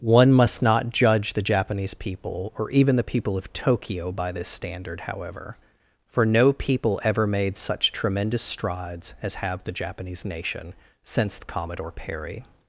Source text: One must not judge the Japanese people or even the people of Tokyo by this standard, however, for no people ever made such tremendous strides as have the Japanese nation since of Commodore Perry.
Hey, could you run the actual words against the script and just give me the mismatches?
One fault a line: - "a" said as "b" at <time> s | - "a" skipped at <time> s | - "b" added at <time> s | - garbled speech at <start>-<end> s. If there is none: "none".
none